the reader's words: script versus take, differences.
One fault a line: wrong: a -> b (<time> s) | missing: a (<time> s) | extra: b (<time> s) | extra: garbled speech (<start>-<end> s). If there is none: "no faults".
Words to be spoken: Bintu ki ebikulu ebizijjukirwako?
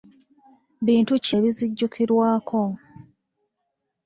missing: ebikulu (1.3 s)